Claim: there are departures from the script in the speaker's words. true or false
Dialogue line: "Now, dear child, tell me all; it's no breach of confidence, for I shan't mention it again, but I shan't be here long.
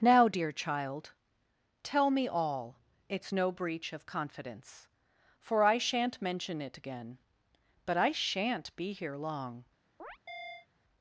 false